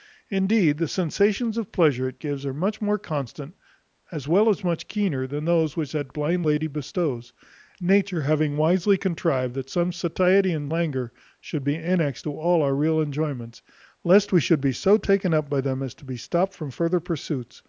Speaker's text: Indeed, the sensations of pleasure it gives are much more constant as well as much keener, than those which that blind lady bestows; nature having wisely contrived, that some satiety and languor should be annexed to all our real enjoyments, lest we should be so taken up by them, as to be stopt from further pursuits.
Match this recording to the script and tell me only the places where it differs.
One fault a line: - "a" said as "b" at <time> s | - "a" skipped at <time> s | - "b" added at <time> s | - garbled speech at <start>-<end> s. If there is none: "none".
none